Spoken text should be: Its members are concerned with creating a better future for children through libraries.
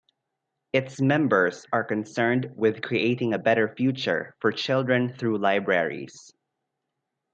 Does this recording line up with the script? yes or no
yes